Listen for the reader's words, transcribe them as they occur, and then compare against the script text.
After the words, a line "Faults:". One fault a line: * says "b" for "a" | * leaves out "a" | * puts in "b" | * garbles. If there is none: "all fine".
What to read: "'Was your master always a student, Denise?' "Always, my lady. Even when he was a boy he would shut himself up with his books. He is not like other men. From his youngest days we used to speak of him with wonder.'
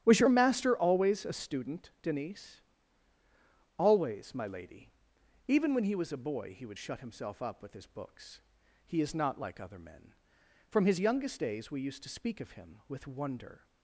"'Was your master always a student, Denise?' "Always, my lady. Even when he was a boy he would shut himself up with his books. He is not like other men. From his youngest days we used to speak of him with wonder.'
Faults:
all fine